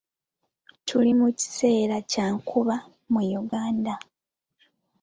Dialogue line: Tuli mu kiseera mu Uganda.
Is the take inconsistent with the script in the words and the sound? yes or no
yes